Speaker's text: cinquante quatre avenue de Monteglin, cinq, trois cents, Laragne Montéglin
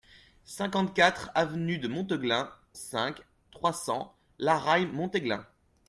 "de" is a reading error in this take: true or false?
false